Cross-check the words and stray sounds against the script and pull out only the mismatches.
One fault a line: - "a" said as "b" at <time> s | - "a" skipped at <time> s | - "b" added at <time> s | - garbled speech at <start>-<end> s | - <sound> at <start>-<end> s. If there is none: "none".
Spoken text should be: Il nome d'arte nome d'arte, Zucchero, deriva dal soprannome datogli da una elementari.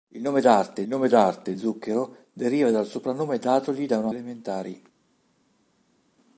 none